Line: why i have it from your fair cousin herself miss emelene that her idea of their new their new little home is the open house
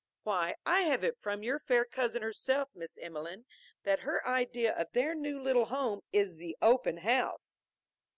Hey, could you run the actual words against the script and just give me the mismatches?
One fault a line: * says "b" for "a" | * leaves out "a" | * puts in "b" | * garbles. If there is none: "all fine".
* leaves out "their new"